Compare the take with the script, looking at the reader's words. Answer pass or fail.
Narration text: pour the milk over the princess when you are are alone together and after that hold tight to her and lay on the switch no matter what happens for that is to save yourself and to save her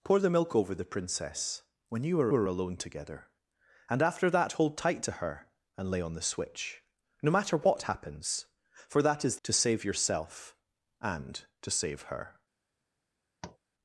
pass